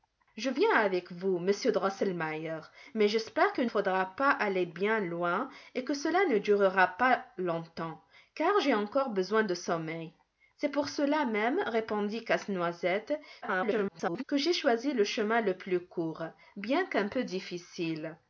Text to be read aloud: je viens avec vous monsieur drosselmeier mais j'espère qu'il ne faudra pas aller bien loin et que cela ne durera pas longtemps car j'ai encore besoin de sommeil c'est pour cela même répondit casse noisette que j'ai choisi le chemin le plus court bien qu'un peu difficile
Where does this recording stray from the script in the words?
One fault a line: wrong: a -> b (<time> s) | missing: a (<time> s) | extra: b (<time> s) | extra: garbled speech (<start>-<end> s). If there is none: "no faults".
missing: ne (3.7 s)
extra: garbled speech (13.4-14.2 s)